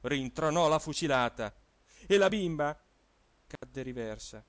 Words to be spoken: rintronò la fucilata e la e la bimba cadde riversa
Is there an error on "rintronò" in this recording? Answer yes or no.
no